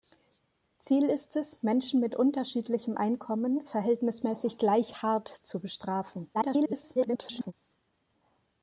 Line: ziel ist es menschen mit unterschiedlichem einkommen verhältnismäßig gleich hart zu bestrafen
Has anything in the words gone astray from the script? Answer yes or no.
yes